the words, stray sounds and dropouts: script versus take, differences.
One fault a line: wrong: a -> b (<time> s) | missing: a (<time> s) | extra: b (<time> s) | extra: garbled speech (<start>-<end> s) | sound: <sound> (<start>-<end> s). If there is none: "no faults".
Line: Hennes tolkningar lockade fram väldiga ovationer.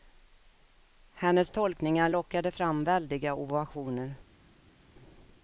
no faults